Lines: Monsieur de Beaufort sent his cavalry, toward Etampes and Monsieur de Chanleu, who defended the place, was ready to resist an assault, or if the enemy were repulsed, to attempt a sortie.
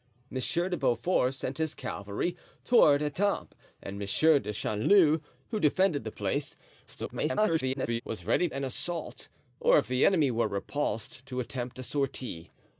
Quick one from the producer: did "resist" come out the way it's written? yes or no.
no